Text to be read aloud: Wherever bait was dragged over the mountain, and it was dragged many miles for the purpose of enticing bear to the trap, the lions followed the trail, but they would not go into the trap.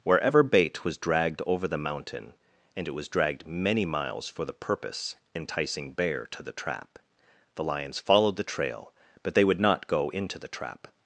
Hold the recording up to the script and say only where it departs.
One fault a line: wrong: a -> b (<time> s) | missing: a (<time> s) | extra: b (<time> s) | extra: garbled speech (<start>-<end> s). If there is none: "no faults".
missing: of (5.2 s)